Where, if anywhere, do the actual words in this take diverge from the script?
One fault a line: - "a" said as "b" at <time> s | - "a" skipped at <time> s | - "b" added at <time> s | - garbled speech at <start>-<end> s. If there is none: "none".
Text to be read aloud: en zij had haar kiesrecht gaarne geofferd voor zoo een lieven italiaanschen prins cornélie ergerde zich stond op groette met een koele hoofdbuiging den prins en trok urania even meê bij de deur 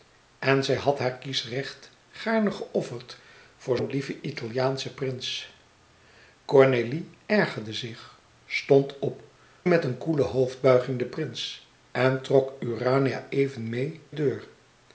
- "zoo" skipped at 3.8 s
- "groette" skipped at 9.2 s
- "bij de" skipped at 14.0 s